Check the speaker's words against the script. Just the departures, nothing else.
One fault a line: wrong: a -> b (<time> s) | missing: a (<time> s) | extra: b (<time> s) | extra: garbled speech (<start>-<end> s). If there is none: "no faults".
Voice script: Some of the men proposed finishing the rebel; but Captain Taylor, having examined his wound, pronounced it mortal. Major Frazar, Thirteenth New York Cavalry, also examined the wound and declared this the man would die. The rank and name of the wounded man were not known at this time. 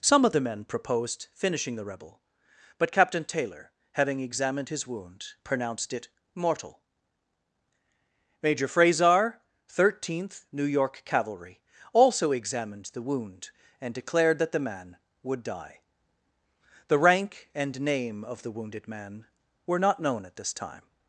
wrong: this -> that (14.4 s)